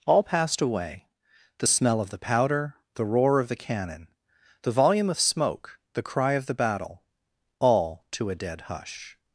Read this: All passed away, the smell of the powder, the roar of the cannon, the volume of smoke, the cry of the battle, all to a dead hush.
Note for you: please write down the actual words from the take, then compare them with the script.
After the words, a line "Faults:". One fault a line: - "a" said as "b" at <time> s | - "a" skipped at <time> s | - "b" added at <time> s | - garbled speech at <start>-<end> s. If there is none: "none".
All passed away, the smell of the powder, the roar of the cannon, the volume of smoke, the cry of the battle, all to a dead hush.
Faults:
none